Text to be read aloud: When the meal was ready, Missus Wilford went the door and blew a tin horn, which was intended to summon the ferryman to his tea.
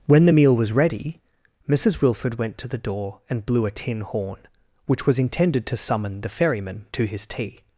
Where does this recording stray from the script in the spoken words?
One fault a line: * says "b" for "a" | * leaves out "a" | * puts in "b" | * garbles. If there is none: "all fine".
* puts in "to"